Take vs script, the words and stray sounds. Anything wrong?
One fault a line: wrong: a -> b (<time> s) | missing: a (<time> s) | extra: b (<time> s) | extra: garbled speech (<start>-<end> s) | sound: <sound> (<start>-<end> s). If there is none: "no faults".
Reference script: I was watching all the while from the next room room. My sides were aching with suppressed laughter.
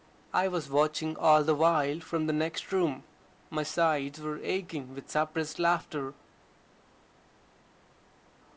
missing: room (3.0 s)